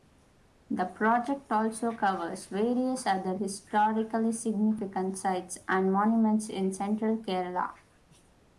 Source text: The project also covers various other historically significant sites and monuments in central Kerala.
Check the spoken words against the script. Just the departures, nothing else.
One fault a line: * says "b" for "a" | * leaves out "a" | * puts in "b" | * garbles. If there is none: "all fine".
all fine